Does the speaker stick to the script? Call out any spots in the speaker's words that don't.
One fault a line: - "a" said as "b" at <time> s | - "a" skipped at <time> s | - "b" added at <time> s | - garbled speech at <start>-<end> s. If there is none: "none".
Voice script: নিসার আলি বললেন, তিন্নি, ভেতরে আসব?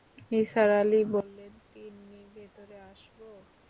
none